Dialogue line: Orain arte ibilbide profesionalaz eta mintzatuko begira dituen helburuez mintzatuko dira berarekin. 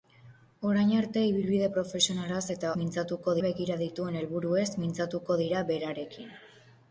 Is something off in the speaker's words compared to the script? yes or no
no